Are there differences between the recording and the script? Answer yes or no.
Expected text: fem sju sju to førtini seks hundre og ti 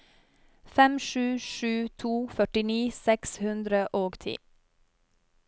no